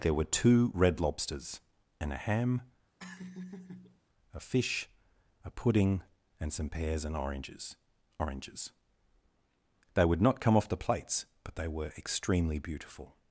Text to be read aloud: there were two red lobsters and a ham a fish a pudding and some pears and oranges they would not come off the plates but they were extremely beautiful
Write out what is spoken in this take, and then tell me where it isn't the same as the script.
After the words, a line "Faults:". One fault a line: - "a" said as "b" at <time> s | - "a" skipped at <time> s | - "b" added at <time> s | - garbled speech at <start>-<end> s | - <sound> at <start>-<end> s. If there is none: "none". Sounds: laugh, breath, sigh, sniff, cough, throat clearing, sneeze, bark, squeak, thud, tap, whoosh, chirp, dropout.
there were two red lobsters and a ham a fish a pudding and some pears and oranges oranges they would not come off the plates but they were extremely beautiful
Faults:
- laugh at 3.0-4.0 s
- "oranges" added at 8.2 s